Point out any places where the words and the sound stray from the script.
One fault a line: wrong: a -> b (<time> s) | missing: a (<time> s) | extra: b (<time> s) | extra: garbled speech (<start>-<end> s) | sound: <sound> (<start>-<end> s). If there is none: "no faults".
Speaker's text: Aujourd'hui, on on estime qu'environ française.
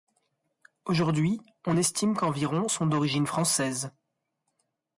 missing: on (1.8 s)
extra: sont d'origine (2.7 s)